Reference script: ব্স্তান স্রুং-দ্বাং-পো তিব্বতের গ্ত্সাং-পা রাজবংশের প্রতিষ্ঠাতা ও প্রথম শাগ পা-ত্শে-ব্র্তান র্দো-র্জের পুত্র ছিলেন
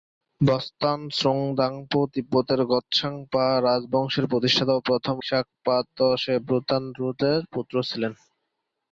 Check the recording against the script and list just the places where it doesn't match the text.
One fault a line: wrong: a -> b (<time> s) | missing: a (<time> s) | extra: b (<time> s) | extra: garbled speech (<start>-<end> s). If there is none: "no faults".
no faults